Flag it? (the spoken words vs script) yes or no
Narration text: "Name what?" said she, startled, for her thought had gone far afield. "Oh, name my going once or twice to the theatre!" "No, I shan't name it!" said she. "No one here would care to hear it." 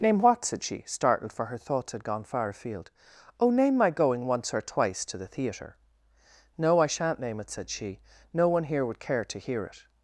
yes